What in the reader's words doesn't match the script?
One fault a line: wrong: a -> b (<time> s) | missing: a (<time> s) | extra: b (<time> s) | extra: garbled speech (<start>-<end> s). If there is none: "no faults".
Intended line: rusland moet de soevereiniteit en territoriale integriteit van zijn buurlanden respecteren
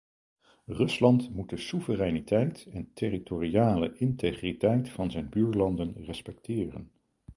no faults